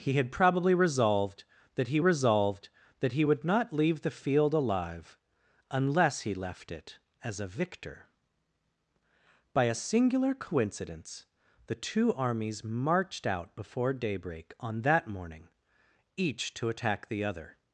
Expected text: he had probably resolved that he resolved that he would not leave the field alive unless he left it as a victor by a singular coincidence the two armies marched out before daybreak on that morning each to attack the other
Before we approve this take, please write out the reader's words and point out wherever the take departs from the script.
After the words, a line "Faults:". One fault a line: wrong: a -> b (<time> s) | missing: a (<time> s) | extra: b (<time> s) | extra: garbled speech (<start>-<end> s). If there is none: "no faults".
he had probably resolved that he resolved that he would not leave the field alive unless he left it as a victor by a singular coincidence the two armies marched out before daybreak on that morning each to attack the other
Faults:
no faults